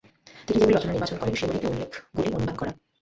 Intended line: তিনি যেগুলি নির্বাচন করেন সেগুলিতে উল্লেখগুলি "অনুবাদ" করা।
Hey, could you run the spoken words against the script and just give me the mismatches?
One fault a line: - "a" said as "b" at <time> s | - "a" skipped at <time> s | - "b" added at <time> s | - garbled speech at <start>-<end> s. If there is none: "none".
- "রচনা" added at 0.8 s